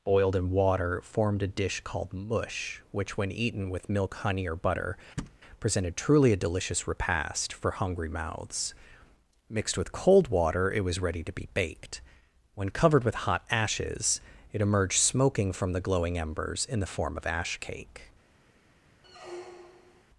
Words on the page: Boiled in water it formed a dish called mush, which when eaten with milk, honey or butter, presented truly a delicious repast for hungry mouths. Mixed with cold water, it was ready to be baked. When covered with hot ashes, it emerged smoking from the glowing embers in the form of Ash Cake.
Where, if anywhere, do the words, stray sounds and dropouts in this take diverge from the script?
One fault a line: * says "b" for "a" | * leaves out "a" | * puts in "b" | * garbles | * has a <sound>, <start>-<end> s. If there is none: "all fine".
* leaves out "it"
* has a thud, 5.2-5.4 s
* has a squeak, 19.0-20.0 s